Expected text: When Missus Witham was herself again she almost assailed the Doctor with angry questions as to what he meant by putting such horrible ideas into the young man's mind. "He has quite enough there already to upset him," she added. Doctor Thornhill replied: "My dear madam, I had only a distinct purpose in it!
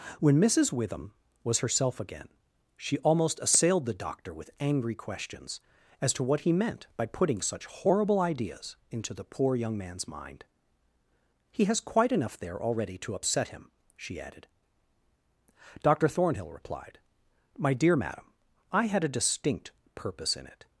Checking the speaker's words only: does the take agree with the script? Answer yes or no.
no